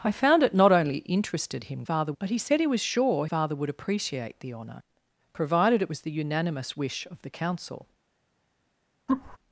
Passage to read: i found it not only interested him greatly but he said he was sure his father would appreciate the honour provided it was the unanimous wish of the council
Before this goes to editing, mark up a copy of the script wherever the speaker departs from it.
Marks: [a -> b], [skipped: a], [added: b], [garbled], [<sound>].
i found it not only interested him [greatly -> father] but he said he was sure [skipped: his] father would appreciate the honour provided it was the unanimous wish of the council [laugh]